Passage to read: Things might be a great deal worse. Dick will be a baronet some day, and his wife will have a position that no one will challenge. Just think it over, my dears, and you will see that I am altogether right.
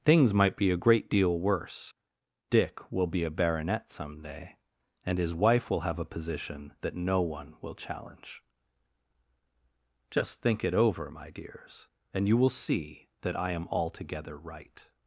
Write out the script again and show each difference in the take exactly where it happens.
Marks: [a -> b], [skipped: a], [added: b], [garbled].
Things might be a great deal worse. Dick will be a baronet some day, and his wife will have a position that no one will challenge. Just think it over, my dears, and you will see that I am altogether right.